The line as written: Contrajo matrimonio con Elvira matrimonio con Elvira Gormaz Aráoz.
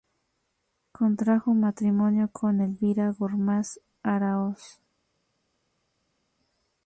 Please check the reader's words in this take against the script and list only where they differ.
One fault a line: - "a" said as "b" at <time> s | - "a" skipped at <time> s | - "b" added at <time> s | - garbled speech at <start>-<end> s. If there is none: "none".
- "matrimonio con Elvira" skipped at 3.1 s